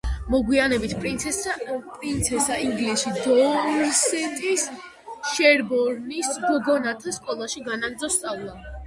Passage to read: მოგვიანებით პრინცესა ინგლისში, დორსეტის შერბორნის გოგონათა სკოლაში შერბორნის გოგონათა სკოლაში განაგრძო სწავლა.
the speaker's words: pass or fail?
fail